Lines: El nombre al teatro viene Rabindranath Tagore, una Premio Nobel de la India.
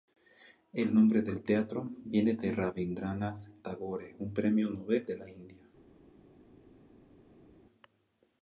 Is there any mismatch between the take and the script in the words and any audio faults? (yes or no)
yes